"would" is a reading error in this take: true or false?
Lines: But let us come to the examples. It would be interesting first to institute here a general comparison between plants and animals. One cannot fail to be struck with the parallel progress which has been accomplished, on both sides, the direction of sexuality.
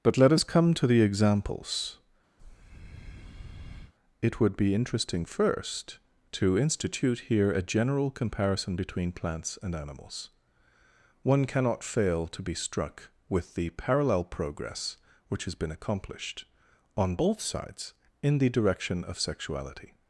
false